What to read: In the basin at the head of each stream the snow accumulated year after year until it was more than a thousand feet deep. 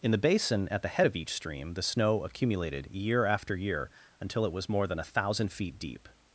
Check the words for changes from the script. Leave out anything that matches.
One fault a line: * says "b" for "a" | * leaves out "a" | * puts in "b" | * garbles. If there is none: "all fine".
all fine